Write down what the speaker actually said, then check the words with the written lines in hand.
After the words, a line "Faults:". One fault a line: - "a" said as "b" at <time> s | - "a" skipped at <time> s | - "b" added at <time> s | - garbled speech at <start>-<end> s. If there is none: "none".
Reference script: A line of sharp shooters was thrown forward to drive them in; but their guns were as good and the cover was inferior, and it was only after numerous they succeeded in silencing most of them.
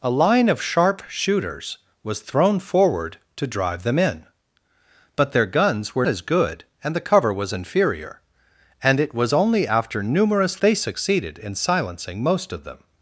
A line of sharp shooters was thrown forward to drive them in; but their guns were as good and the cover was inferior, and it was only after numerous they succeeded in silencing most of them.
Faults:
none